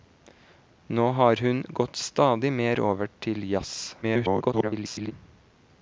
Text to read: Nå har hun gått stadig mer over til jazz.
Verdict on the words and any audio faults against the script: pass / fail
fail